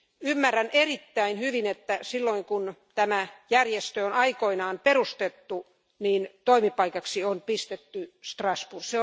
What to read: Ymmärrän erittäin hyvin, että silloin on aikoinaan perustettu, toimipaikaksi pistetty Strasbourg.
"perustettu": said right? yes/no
yes